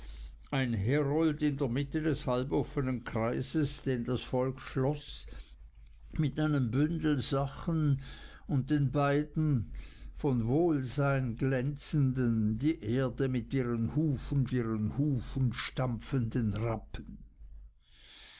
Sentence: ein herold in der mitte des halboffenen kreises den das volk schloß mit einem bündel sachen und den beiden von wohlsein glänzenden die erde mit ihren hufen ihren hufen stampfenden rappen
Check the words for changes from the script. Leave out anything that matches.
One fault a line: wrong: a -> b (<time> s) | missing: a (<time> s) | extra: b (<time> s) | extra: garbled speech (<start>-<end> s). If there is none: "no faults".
no faults